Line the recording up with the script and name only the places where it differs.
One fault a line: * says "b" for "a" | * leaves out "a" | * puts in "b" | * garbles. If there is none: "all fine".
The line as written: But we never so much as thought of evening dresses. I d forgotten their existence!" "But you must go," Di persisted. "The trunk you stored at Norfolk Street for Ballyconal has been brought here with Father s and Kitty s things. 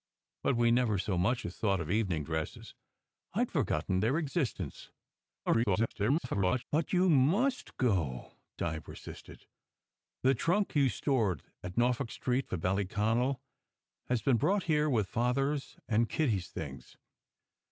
* garbles